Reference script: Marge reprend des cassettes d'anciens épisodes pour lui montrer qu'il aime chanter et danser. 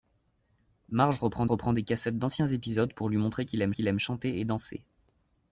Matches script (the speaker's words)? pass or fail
fail